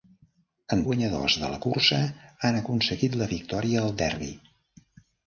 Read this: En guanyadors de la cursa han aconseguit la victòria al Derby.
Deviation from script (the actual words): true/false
false